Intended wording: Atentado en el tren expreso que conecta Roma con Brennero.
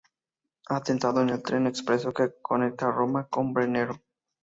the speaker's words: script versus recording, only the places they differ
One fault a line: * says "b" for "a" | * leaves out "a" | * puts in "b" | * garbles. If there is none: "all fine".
all fine